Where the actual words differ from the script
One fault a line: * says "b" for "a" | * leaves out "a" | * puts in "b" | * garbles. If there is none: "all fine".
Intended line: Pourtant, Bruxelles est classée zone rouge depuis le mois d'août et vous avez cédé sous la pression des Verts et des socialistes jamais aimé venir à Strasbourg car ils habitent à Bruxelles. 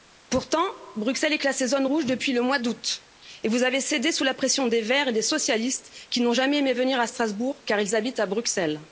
* puts in "qui n'ont"